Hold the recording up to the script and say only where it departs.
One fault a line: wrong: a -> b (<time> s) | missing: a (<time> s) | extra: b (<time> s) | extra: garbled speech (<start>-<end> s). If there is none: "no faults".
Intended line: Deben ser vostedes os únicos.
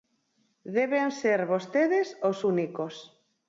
no faults